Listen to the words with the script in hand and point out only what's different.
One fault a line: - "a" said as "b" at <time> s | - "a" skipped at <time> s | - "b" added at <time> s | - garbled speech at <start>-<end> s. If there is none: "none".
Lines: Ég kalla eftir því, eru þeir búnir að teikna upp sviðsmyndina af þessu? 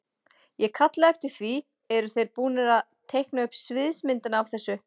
none